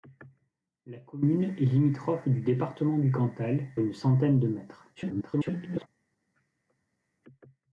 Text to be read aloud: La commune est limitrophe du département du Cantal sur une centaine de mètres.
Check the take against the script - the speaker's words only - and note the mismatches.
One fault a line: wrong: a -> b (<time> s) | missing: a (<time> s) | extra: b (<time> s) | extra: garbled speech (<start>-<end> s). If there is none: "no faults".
missing: sur (3.7 s)
extra: garbled speech (4.9-5.9 s)